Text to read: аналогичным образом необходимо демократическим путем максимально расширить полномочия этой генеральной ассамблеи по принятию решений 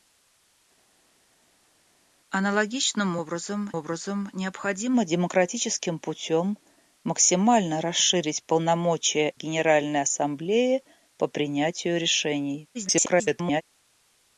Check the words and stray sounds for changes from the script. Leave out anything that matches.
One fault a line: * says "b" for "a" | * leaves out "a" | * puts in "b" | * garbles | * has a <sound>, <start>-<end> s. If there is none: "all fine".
* puts in "образом"
* leaves out "этой"
* garbles